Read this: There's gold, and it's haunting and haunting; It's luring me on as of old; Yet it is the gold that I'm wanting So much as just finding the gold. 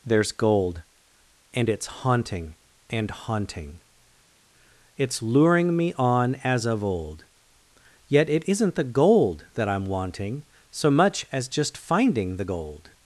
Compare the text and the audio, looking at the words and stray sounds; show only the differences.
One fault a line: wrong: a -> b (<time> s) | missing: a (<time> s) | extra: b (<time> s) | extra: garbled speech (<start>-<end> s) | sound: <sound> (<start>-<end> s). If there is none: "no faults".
wrong: is -> isn't (8.5 s)